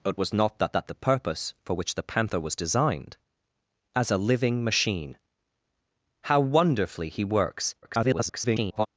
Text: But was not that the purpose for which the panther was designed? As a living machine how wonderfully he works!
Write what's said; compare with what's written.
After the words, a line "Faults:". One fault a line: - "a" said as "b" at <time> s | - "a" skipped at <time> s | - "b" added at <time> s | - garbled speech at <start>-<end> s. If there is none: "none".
But was not that that the purpose for which the panther was designed? As a living machine how wonderfully he works! [garbled]
Faults:
- "that" added at 0.7 s
- garbled speech at 7.8-8.9 s